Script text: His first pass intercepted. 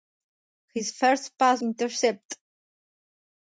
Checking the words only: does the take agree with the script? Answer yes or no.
yes